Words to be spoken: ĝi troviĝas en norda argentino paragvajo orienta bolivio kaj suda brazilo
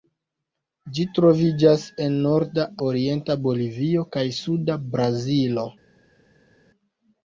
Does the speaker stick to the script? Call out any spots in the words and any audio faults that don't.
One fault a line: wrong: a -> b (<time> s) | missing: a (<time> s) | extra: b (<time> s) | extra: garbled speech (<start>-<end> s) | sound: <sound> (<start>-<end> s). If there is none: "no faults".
missing: argentino paragvajo (2.6 s)